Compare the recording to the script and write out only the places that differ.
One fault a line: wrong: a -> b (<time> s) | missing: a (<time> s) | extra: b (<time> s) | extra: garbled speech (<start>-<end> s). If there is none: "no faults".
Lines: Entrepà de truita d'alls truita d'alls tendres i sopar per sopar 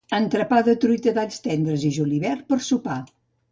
missing: truita d'alls (1.4 s)
wrong: sopar -> julivert (2.0 s)